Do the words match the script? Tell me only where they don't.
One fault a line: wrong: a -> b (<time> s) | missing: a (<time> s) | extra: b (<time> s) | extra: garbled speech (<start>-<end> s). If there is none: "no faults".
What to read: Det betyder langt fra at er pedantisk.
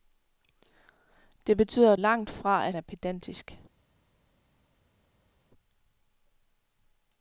no faults